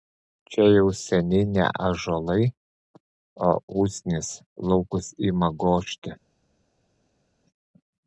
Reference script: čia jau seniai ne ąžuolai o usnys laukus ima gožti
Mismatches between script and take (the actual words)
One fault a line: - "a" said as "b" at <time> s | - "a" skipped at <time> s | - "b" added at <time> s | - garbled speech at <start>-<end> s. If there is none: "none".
none